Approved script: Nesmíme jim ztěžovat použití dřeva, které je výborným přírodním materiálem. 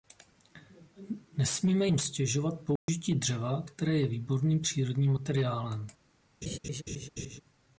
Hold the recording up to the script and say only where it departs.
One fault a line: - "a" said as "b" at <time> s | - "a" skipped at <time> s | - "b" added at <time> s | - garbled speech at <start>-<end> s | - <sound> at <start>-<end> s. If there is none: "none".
- dropout at 2.8-2.9 s
- laugh at 6.4-7.4 s